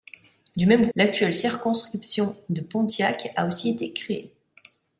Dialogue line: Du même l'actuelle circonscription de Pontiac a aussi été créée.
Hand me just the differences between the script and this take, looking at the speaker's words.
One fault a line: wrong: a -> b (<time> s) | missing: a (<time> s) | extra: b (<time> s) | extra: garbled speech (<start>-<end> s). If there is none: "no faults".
no faults